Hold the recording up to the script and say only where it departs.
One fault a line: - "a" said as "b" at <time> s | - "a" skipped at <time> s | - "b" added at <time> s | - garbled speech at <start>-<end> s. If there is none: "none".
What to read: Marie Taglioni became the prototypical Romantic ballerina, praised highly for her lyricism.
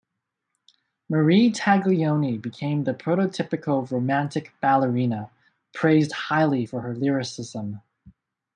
none